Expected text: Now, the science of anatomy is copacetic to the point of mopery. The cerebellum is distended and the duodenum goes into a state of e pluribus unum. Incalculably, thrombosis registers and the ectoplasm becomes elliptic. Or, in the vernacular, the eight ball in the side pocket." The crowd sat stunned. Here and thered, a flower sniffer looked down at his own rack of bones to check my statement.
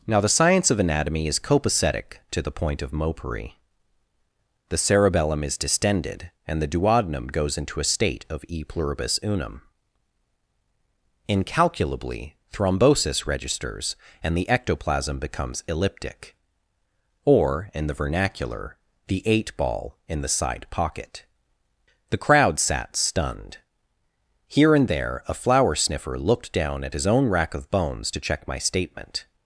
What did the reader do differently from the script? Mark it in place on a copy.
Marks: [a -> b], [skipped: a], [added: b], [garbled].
Now, the science of anatomy is copacetic to the point of mopery. The cerebellum is distended and the duodenum goes into a state of e pluribus unum. Incalculably, thrombosis registers and the ectoplasm becomes elliptic. Or, in the vernacular, the eight ball in the side pocket." The crowd sat stunned. Here and [thered, -> there] a flower sniffer looked down at his own rack of bones to check my statement.